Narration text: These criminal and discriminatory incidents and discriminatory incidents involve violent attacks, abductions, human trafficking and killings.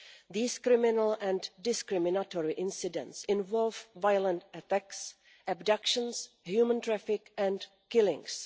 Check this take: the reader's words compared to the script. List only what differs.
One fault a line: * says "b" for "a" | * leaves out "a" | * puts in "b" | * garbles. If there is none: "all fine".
* leaves out "and discriminatory incidents"